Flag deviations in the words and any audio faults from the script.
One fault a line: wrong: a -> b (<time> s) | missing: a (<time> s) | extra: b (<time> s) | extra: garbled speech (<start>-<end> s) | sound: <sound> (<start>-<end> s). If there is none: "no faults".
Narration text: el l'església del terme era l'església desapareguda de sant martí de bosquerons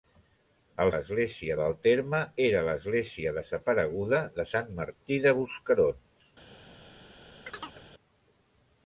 sound: chirp (7.5-7.8 s)